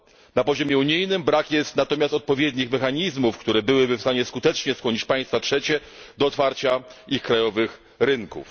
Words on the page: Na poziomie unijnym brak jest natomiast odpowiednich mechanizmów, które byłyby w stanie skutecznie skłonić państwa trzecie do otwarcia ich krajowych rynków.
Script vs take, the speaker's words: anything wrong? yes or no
no